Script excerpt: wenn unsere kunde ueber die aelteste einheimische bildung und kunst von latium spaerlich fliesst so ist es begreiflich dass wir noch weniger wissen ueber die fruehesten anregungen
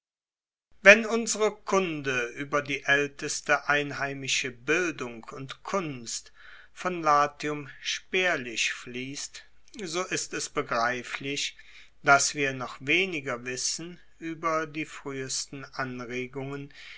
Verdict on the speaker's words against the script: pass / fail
pass